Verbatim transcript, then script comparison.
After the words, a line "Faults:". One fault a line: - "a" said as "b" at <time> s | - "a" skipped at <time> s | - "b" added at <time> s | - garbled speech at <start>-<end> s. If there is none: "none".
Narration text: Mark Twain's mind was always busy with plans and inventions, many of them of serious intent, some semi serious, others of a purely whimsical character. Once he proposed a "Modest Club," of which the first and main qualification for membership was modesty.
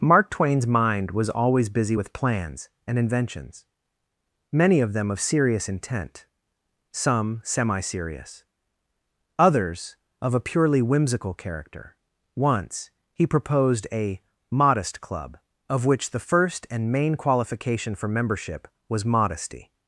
Mark Twain's mind was always busy with plans and inventions, many of them of serious intent, some semi serious, others of a purely whimsical character. Once he proposed a "Modest Club," of which the first and main qualification for membership was modesty.
Faults:
none